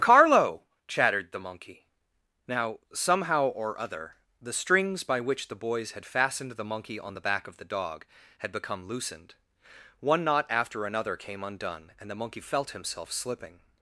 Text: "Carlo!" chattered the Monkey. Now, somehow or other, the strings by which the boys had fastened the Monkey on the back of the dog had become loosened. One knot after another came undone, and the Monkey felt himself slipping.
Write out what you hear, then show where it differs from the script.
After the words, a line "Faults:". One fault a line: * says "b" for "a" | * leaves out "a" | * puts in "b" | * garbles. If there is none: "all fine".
"Carlo!" chattered the Monkey. Now, somehow or other, the strings by which the boys had fastened the Monkey on the back of the dog had become loosened. One knot after another came undone, and the Monkey felt himself slipping.
Faults:
all fine